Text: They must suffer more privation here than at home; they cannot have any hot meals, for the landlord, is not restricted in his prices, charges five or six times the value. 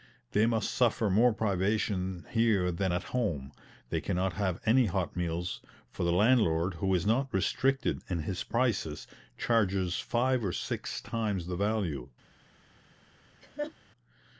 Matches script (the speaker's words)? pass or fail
fail